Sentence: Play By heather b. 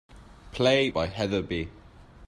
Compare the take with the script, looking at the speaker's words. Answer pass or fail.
pass